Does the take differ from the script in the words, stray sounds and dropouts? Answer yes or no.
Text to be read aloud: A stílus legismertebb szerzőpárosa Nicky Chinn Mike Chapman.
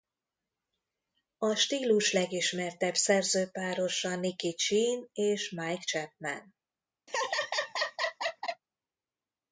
yes